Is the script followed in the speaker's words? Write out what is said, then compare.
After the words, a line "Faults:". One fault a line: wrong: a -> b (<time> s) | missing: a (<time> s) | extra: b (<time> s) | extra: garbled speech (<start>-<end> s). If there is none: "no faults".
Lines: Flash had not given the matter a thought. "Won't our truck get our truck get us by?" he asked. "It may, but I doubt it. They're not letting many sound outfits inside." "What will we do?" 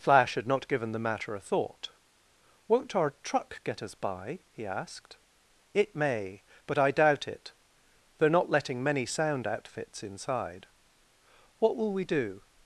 Flash had not given the matter a thought. "Won't our truck get us by?" he asked. "It may, but I doubt it. They're not letting many sound outfits inside." "What will we do?"
Faults:
missing: our truck get (3.8 s)